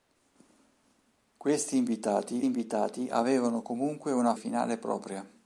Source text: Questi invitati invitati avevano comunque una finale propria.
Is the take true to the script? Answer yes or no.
yes